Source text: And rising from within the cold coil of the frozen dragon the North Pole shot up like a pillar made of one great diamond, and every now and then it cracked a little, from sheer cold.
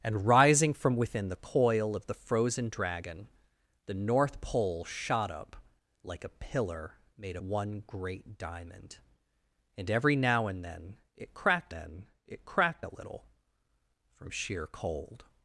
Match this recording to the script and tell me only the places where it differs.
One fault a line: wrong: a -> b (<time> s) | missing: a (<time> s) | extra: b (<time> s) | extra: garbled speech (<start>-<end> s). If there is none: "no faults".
missing: cold (1.4 s)
missing: of (7.4 s)
extra: then it cracked (11.7 s)